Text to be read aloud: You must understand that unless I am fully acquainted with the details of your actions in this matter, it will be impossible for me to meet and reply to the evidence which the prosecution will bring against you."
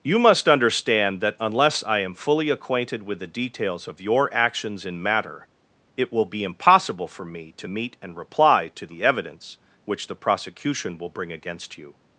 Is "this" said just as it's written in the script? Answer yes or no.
no